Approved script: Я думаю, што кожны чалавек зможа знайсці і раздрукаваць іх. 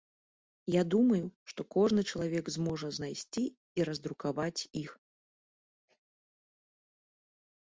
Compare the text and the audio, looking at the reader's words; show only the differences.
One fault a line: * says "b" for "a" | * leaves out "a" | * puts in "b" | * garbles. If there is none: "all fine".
all fine